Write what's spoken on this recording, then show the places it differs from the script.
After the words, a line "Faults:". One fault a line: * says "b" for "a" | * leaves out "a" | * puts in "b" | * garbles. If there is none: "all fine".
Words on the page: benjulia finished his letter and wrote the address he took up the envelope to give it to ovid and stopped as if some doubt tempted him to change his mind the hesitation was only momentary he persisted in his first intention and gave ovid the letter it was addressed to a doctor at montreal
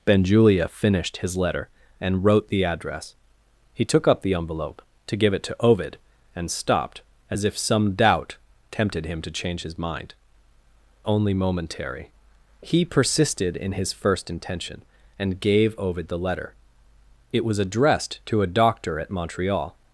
benjulia finished his letter and wrote the address he took up the envelope to give it to ovid and stopped as if some doubt tempted him to change his mind only momentary he persisted in his first intention and gave ovid the letter it was addressed to a doctor at montreal
Faults:
* leaves out "the hesitation was"